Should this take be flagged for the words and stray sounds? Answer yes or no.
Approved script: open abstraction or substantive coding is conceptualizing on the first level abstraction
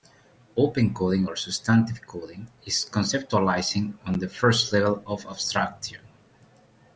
yes